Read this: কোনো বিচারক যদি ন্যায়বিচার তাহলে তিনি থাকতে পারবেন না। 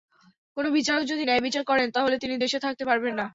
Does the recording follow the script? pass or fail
fail